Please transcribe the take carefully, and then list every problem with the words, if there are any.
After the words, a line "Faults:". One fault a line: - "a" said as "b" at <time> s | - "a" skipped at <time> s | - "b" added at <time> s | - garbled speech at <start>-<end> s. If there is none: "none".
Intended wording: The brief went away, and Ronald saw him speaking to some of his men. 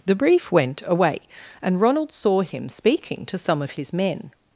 The brief went away, and Ronald saw him speaking to some of his men.
Faults:
none